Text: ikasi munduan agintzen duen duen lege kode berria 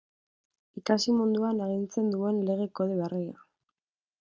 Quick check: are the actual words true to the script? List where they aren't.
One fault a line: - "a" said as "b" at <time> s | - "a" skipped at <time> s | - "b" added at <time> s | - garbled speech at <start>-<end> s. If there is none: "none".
- "duen" skipped at 2.4 s